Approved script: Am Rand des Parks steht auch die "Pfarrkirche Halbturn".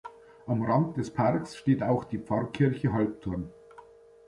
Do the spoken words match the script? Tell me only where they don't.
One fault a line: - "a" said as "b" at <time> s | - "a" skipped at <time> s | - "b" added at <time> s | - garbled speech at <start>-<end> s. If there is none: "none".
none